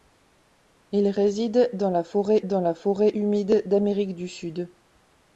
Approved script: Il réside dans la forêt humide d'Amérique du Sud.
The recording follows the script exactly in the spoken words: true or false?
false